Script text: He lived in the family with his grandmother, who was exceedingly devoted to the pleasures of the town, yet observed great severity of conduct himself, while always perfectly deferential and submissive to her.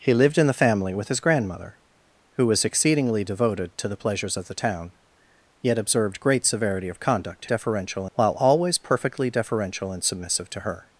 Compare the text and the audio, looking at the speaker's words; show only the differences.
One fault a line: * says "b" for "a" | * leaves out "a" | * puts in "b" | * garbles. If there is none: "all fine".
* says "deferential" for "himself"